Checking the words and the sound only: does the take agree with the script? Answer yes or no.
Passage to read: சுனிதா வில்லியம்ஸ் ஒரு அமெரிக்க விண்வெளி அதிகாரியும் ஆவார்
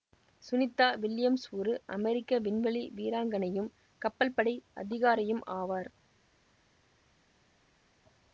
no